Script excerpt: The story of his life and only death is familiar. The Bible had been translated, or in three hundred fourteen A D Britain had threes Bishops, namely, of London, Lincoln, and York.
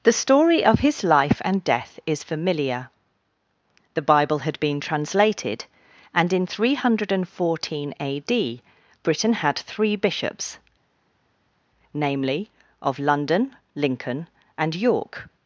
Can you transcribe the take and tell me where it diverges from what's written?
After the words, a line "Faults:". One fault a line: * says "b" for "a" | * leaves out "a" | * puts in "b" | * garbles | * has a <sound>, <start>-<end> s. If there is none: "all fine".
The story of his life and death is familiar. The Bible had been translated, and in three hundred fourteen A D Britain had three Bishops, namely, of London, Lincoln, and York.
Faults:
* leaves out "only"
* says "and" for "or"
* says "three" for "threes"